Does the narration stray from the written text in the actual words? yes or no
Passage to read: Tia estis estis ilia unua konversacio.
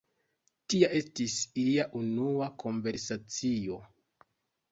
yes